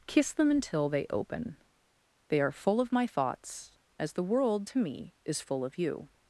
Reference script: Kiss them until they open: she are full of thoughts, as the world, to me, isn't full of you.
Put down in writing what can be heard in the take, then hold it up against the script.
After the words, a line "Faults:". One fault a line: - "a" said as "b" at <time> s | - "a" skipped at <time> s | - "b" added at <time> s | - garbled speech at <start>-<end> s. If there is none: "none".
Kiss them until they open: they are full of my thoughts, as the world, to me, is full of you.
Faults:
- "she" said as "they" at 2.3 s
- "my" added at 2.9 s
- "isn't" said as "is" at 5.2 s